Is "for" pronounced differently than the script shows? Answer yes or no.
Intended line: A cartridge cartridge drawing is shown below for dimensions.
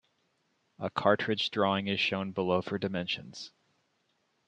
no